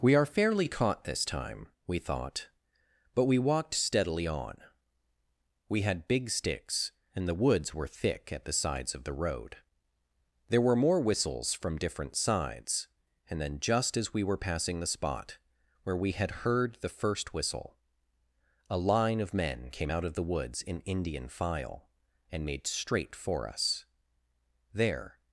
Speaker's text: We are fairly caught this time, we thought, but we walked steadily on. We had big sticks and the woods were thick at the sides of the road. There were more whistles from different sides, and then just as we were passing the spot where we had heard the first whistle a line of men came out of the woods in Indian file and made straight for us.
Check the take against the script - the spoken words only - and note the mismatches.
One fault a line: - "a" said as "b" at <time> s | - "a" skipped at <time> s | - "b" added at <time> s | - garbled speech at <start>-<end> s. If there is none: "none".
- "There" added at 24.7 s